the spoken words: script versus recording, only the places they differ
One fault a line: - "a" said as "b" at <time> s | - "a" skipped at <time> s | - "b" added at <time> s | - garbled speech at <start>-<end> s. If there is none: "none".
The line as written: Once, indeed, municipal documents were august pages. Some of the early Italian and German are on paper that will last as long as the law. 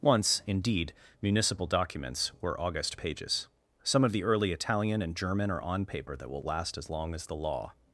none